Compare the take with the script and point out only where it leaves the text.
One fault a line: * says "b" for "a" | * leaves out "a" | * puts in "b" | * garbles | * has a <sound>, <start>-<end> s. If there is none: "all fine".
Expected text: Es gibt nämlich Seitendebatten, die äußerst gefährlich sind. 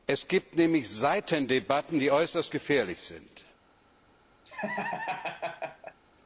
* has a laugh, 4.4-6.0 s